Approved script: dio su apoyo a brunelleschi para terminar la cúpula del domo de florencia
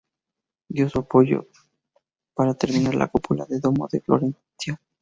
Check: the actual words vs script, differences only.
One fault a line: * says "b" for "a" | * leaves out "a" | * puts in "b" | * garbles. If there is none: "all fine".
* leaves out "a brunelleschi"